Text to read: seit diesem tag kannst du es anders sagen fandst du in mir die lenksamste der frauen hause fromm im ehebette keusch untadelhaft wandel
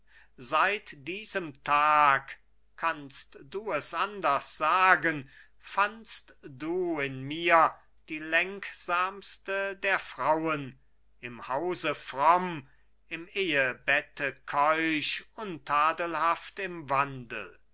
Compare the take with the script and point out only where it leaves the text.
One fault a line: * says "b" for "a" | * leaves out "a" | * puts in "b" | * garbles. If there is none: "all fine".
* puts in "im"
* puts in "im"